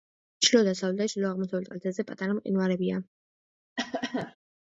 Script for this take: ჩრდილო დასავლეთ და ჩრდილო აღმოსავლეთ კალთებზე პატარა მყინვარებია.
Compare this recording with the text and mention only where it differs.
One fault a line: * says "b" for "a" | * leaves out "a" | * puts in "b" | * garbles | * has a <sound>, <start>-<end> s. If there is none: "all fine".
* has a cough, 3.8-4.4 s